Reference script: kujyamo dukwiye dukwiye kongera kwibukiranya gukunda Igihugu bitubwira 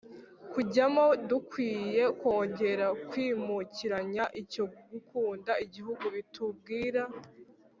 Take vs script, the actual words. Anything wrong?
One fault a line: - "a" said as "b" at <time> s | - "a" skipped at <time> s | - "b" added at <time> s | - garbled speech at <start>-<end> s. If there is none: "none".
- "dukwiye" skipped at 2.0 s
- "icyo" added at 4.4 s